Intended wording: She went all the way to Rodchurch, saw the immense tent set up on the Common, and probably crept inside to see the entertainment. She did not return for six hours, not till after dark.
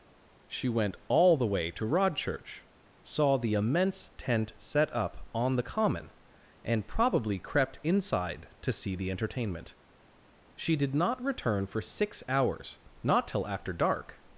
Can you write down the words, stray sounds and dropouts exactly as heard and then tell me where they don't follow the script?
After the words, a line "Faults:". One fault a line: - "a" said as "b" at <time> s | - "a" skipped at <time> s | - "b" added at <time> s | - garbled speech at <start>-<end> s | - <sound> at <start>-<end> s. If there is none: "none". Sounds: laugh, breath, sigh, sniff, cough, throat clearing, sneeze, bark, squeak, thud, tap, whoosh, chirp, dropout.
She went all the way to Rodchurch, saw the immense tent set up on the Common, and probably crept inside to see the entertainment. She did not return for six hours, not till after dark.
Faults:
none